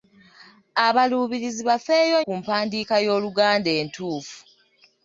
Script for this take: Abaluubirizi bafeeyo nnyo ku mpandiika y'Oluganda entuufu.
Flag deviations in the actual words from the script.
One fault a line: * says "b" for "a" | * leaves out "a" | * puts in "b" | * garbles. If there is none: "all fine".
* leaves out "nnyo"